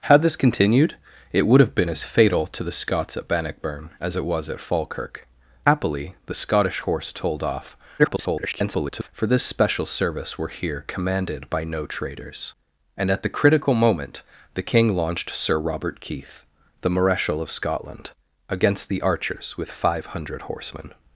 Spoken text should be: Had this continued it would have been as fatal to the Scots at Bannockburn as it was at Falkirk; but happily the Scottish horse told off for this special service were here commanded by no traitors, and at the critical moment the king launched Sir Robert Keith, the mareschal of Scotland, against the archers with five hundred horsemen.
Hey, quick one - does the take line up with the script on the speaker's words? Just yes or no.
no